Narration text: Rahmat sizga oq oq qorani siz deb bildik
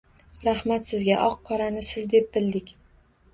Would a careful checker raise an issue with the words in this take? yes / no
yes